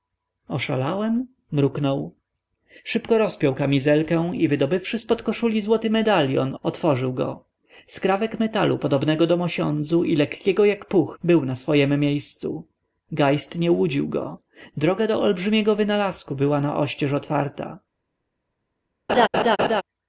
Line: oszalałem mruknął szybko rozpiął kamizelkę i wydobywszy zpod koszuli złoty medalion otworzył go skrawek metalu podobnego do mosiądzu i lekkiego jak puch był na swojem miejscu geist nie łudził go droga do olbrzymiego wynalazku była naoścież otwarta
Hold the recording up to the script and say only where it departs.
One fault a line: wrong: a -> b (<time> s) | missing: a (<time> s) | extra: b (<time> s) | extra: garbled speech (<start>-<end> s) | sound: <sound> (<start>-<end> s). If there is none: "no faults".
sound: laugh (19.1-19.8 s)